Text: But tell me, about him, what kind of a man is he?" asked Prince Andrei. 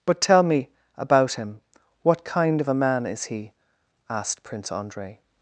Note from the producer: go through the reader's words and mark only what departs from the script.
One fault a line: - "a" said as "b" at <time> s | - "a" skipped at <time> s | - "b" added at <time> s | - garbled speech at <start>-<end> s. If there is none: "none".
none